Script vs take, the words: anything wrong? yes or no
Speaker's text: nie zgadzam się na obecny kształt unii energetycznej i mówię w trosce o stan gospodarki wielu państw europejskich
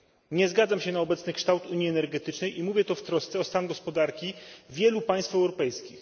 yes